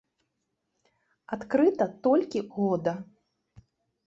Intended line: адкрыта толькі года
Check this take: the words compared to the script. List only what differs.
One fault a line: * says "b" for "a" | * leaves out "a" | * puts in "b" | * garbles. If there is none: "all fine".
all fine